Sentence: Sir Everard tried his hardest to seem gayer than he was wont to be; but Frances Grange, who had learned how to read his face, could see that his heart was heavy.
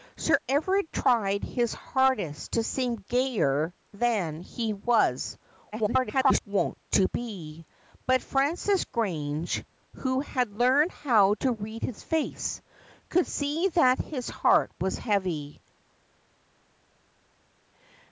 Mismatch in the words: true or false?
true